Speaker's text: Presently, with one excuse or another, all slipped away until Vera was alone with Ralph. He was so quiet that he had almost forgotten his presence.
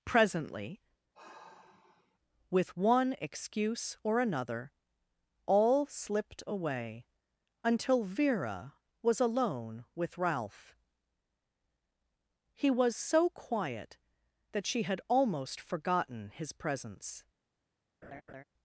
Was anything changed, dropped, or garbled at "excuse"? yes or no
no